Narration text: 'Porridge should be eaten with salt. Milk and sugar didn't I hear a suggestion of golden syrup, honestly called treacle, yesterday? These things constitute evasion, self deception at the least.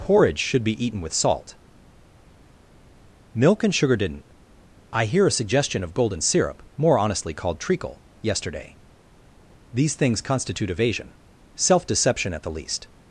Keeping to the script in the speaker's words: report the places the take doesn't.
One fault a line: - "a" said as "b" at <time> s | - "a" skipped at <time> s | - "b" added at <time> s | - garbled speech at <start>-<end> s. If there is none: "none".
- "more" added at 6.8 s